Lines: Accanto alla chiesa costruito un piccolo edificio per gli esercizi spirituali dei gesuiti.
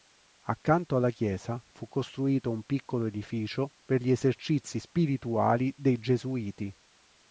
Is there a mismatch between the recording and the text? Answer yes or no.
yes